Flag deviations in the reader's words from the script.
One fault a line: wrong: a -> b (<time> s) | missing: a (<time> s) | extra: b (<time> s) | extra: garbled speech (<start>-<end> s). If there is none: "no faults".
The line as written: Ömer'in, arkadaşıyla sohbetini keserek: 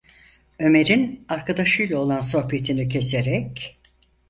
extra: olan (2.0 s)